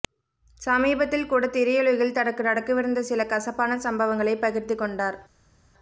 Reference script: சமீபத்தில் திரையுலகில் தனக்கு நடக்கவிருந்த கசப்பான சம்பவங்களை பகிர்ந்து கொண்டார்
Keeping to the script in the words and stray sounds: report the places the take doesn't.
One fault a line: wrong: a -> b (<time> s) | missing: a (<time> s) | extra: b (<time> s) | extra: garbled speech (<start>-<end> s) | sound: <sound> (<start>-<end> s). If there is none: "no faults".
extra: கூட (1.3 s)
extra: சில (3.0 s)